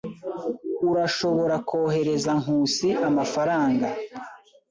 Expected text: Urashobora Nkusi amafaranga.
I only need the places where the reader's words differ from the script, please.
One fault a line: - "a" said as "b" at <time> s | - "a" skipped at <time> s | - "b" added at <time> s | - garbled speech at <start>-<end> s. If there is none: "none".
- "kohereza" added at 1.7 s